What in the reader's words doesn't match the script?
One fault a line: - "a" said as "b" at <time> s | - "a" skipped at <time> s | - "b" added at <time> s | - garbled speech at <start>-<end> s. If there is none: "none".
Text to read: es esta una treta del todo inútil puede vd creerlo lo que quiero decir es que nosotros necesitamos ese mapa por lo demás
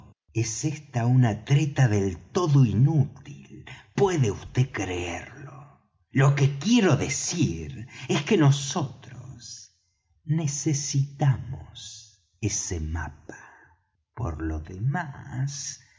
none